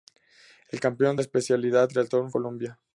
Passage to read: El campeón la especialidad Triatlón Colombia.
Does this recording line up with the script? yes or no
yes